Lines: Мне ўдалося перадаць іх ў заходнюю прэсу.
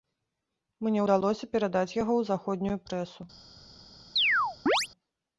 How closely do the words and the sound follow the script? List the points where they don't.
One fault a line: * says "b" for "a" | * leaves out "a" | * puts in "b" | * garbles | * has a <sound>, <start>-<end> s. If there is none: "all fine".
* says "яго" for "іх"
* has a chirp, 4.2-4.9 s